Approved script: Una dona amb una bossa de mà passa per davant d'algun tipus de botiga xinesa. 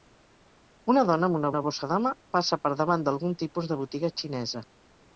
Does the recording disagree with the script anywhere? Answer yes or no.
yes